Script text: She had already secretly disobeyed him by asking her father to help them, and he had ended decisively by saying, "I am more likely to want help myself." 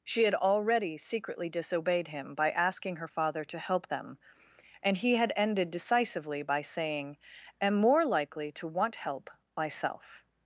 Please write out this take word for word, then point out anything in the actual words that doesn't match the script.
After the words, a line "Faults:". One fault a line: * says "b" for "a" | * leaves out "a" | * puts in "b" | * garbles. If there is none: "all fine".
She had already secretly disobeyed him by asking her father to help them, and he had ended decisively by saying, "am more likely to want help myself."
Faults:
* leaves out "I"